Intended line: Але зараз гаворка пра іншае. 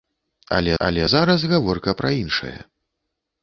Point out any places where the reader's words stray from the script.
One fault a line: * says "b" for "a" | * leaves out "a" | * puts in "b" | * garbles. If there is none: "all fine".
* puts in "але"